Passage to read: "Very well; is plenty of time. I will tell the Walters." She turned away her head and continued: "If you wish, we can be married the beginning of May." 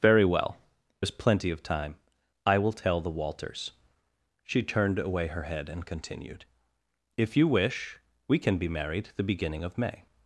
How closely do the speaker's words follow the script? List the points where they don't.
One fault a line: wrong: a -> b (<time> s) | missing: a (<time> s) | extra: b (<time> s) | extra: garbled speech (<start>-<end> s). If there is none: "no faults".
no faults